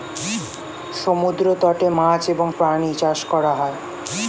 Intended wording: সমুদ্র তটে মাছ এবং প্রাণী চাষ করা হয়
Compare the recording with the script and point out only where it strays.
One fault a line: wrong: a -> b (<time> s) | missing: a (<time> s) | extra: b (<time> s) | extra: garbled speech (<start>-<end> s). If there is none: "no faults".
no faults